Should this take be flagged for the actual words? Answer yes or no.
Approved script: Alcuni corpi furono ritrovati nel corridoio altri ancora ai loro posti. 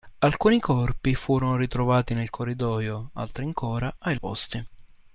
yes